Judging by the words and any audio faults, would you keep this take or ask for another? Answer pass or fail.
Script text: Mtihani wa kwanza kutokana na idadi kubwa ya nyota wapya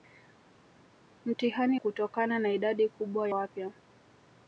fail